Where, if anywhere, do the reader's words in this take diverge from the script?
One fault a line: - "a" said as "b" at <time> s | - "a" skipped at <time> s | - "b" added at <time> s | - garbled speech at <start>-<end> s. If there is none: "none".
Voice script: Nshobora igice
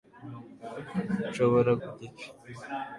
none